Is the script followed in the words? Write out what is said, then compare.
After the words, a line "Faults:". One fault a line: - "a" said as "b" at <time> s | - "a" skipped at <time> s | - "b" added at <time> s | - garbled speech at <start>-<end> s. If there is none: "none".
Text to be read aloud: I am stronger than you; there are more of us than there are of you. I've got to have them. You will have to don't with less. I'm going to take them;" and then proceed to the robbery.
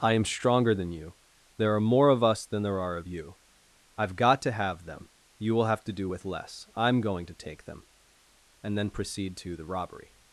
I am stronger than you; there are more of us than there are of you. I've got to have them. You will have to do with less. I'm going to take them;" and then proceed to the robbery.
Faults:
- "don't" said as "do" at 5.9 s